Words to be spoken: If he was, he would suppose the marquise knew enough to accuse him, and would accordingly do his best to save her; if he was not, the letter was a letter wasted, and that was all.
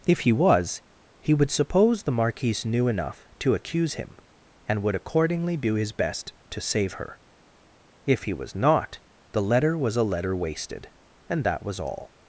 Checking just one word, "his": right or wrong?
right